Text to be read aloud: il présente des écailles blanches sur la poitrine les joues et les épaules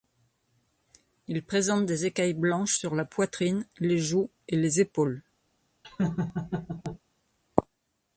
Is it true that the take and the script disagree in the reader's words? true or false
false